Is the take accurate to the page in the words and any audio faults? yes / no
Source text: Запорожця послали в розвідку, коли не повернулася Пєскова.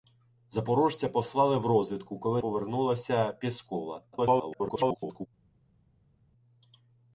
no